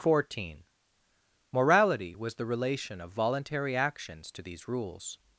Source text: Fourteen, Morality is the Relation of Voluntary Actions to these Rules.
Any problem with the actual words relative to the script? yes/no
yes